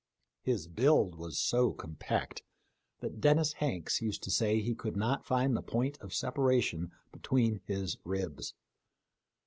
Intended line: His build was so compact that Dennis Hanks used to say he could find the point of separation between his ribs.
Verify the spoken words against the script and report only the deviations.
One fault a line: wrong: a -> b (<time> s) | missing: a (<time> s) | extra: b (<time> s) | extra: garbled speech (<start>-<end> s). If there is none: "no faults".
extra: not (5.0 s)